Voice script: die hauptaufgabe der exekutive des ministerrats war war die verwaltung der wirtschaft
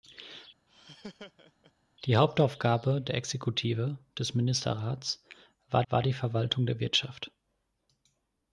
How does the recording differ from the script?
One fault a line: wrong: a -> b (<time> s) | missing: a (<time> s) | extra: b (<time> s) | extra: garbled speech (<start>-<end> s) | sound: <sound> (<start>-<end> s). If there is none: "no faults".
sound: laugh (0.7-1.7 s)